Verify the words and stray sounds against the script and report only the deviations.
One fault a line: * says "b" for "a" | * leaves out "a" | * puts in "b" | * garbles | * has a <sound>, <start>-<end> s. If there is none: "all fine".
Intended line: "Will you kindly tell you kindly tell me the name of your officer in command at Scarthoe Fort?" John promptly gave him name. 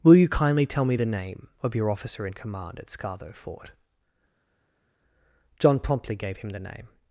* leaves out "you kindly tell"
* puts in "the"